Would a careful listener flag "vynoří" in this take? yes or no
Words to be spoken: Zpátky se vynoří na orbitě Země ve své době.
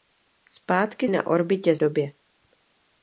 yes